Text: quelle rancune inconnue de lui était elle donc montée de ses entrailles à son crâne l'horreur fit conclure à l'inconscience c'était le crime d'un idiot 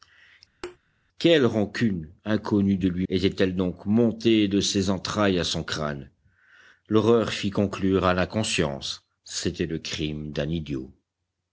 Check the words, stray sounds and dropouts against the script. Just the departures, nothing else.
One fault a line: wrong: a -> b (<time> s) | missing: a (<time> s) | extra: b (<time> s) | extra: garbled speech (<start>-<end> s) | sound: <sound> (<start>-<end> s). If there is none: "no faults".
sound: thud (0.6-0.8 s)